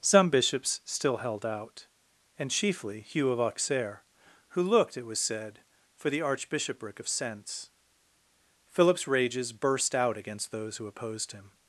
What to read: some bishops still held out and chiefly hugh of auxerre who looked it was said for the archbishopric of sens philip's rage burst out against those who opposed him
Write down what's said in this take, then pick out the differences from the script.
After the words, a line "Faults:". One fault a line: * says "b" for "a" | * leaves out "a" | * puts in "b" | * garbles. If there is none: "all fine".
some bishops still held out and chiefly hugh of auxerre who looked it was said for the archbishopric of sens philip's rages burst out against those who opposed him
Faults:
* says "rages" for "rage"